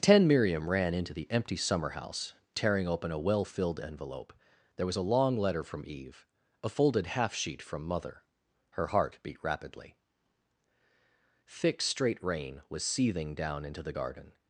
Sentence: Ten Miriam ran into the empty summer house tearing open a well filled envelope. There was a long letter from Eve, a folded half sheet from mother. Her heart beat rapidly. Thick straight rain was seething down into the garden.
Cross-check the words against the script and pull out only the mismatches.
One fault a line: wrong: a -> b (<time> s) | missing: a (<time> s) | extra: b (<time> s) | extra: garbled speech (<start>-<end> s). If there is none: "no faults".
no faults